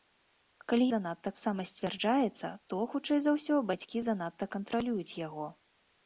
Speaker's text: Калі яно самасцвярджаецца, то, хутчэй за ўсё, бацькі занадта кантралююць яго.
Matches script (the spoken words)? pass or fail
fail